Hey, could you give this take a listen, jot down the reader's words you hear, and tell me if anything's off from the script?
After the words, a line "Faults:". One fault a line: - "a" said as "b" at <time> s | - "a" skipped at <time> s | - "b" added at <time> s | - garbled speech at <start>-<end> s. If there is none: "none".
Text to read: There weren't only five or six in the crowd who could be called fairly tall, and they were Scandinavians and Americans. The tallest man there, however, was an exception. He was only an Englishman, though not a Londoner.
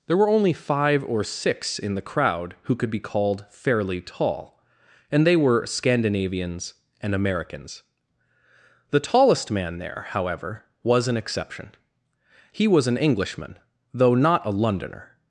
There were only five or six in the crowd who could be called fairly tall, and they were Scandinavians and Americans. The tallest man there, however, was an exception. He was an Englishman, though not a Londoner.
Faults:
- "weren't" said as "were" at 0.2 s
- "only" skipped at 12.9 s